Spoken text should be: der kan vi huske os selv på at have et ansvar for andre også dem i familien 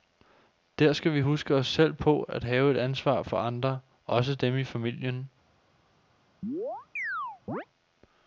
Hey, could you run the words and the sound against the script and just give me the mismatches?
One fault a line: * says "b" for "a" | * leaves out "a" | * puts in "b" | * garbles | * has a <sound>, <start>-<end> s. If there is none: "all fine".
* says "skal" for "kan"
* has a chirp, 6.4-7.7 s